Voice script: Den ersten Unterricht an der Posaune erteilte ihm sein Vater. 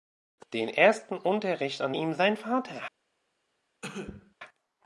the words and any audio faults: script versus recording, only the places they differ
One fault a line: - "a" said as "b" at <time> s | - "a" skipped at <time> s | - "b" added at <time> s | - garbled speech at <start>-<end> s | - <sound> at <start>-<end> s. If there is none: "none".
- "der Posaune erteilte" skipped at 1.9 s
- cough at 3.8-4.3 s